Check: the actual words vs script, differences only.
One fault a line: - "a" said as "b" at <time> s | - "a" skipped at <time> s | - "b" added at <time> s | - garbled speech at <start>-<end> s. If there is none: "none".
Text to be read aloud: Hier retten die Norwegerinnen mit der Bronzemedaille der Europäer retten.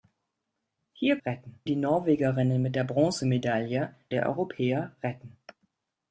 none